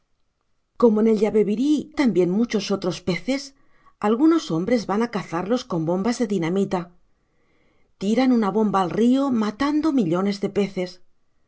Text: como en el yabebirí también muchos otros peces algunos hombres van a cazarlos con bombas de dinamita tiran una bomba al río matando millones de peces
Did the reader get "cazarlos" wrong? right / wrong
right